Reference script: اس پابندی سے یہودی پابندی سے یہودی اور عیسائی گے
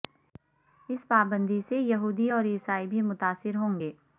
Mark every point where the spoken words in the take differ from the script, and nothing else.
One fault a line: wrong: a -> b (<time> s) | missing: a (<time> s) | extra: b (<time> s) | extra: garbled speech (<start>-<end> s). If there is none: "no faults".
wrong: پابندی سے یہودی اور عیسائی -> اور عیسائی بھی متاثر ہوں (2.3 s)